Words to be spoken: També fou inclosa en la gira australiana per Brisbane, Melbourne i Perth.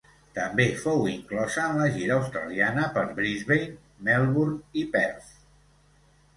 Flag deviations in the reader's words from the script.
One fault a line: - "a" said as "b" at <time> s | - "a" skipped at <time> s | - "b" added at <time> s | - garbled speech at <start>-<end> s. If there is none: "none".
none